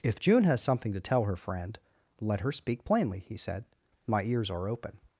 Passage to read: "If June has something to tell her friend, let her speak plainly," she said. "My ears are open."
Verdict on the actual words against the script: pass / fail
fail